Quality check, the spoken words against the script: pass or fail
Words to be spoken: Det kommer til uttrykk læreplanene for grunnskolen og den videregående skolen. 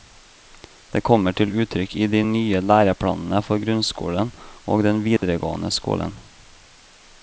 fail